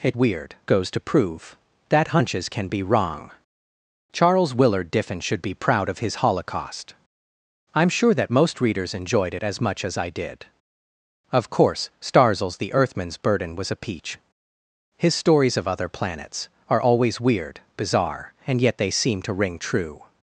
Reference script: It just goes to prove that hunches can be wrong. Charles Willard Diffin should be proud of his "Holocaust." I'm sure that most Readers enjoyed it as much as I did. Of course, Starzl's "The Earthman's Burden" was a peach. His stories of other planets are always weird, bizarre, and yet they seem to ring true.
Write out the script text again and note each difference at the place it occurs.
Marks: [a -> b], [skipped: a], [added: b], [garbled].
It [just -> weird] goes to prove that hunches can be wrong. Charles Willard Diffin should be proud of his "Holocaust." I'm sure that most Readers enjoyed it as much as I did. Of course, Starzl's "The Earthman's Burden" was a peach. His stories of other planets are always weird, bizarre, and yet they seem to ring true.